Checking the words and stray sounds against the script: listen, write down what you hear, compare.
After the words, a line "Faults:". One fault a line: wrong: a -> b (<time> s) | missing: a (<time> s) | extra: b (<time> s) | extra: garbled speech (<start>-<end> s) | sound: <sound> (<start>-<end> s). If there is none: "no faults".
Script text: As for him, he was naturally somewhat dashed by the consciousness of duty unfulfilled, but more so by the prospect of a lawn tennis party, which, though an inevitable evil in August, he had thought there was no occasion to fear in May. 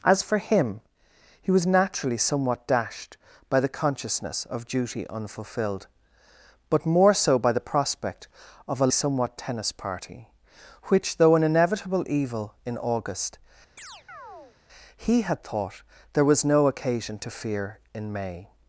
As for him, he was naturally somewhat dashed by the consciousness of duty unfulfilled, but more so by the prospect of a somewhat tennis party, which, though an inevitable evil in August, he had thought there was no occasion to fear in May.
Faults:
wrong: lawn -> somewhat (8.9 s)
sound: chirp (13.8-14.6 s)